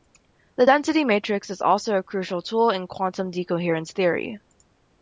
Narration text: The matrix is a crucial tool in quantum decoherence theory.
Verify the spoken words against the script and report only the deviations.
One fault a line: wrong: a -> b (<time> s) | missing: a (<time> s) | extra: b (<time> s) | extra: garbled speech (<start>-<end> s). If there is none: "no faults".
extra: density (0.6 s)
extra: also (1.6 s)